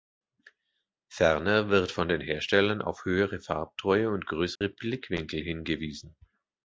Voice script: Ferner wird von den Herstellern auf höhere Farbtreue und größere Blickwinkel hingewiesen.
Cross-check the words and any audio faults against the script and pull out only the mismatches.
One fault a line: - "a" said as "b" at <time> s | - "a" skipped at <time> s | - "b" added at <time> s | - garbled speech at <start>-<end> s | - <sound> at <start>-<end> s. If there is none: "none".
- dropout at 4.6-4.6 s